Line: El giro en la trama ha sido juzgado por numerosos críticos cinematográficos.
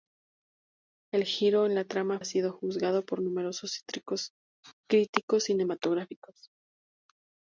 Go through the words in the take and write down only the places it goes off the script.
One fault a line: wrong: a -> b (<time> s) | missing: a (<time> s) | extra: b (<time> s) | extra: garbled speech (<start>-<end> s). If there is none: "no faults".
no faults